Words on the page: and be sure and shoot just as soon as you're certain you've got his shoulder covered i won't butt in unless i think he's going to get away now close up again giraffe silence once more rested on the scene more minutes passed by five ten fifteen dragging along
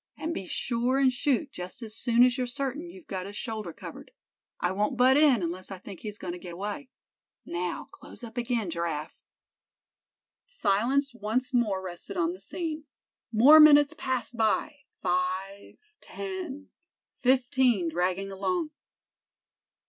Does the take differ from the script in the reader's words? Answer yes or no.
no